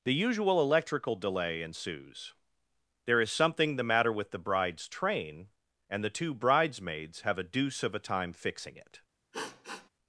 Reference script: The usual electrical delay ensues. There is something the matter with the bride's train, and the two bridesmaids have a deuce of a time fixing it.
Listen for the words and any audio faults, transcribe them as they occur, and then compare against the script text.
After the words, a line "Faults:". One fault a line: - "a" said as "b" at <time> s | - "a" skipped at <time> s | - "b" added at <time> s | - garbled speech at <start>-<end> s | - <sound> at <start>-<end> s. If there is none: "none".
The usual electrical delay ensues. There is something the matter with the bride's train, and the two bridesmaids have a deuce of a time fixing it.
Faults:
- sniff at 9.3-9.9 s